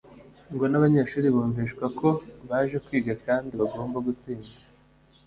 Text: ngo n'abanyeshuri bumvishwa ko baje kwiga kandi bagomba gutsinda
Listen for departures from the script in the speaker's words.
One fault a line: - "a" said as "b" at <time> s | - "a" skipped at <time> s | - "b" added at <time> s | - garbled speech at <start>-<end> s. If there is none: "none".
none